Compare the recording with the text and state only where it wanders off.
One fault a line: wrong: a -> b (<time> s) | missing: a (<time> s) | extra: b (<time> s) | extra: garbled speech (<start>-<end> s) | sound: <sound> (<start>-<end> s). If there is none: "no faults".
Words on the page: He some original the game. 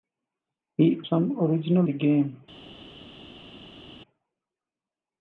no faults